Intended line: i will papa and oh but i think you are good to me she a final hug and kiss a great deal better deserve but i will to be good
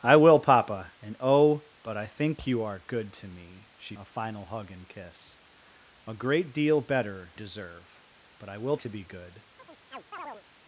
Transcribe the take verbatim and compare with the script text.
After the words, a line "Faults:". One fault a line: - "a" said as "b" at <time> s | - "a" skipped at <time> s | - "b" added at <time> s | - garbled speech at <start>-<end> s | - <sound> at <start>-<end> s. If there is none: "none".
i will papa and oh but i think you are good to me she a final hug and kiss a great deal better deserve but i will to be good
Faults:
- chirp at 9.6-10.4 s